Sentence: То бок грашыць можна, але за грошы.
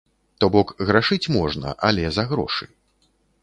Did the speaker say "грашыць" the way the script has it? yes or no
yes